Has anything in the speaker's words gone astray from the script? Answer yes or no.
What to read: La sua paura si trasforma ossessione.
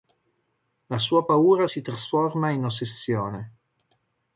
yes